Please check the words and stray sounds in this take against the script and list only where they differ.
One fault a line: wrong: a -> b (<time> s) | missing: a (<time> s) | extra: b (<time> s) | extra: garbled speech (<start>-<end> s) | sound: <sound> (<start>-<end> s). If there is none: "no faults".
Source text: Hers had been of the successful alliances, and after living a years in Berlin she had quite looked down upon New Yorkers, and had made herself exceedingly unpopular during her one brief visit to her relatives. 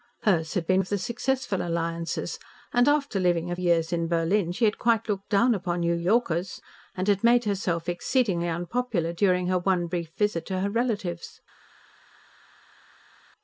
no faults